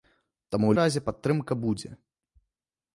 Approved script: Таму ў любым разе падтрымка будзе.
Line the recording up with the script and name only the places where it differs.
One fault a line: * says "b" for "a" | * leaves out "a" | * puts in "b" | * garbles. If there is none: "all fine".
* leaves out "любым"